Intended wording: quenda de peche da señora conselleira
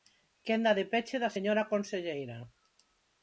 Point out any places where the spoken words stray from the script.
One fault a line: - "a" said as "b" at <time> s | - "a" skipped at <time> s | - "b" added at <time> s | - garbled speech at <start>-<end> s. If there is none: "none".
none